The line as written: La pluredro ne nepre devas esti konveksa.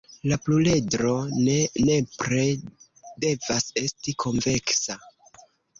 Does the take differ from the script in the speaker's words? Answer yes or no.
no